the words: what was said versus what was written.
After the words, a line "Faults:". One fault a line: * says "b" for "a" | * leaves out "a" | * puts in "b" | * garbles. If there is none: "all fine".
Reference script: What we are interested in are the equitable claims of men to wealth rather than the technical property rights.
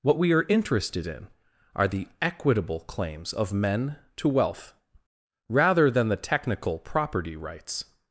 What we are interested in are the equitable claims of men to wealth rather than the technical property rights.
Faults:
all fine